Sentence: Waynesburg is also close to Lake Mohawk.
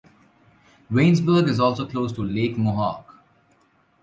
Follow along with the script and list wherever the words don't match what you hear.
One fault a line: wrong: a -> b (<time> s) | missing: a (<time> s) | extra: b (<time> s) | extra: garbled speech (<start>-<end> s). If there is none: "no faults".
no faults